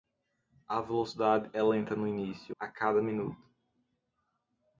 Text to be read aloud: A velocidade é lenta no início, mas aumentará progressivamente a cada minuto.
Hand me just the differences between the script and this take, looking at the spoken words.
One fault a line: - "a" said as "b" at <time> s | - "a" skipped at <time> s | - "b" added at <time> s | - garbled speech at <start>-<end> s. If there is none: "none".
- "mas aumentará progressivamente" skipped at 2.5 s